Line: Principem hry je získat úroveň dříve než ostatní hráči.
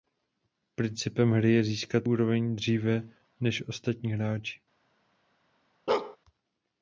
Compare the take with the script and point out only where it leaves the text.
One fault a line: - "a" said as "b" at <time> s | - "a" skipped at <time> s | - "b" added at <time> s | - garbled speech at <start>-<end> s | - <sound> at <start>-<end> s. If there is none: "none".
- bark at 5.9-6.2 s